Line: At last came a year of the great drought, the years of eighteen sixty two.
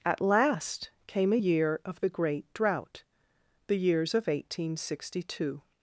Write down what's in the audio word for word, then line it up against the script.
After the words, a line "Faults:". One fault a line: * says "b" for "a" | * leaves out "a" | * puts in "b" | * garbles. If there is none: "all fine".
At last came a year of the great drought, the years of eighteen sixty two.
Faults:
all fine